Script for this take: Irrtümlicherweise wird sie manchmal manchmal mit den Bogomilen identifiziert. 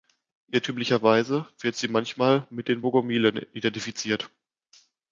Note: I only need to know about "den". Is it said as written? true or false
true